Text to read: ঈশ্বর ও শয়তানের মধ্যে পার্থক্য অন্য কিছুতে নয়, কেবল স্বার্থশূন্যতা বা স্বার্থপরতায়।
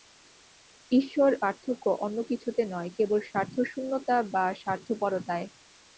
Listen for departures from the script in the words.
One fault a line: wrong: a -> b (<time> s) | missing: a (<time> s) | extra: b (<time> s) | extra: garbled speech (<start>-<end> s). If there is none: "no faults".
missing: ও শয়তানের মধ্যে (1.3 s)